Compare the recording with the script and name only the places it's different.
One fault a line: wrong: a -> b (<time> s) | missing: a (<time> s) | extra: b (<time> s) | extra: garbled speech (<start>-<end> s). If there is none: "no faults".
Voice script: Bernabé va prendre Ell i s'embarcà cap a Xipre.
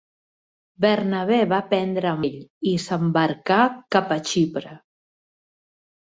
no faults